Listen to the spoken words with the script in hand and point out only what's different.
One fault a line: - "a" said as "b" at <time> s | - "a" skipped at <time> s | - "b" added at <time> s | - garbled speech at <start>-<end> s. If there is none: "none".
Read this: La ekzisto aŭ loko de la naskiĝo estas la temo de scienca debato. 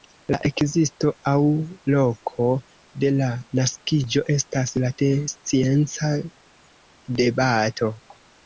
- "temo" skipped at 4.9 s